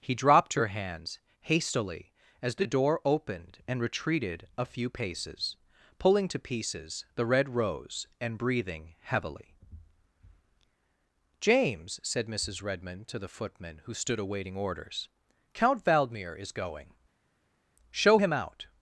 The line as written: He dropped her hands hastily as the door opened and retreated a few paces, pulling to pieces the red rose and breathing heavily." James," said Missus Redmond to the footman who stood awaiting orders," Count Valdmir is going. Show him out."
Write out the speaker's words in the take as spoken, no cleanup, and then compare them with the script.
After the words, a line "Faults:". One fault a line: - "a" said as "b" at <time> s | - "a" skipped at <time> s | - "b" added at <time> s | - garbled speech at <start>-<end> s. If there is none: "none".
He dropped her hands hastily as the door opened and retreated a few paces, pulling to pieces the red rose and breathing heavily." James," said Missus Redmond to the footman who stood awaiting orders," Count Valdmir is going. Show him out."
Faults:
none